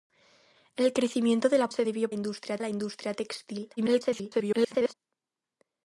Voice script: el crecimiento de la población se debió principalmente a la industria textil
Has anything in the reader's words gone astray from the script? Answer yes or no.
yes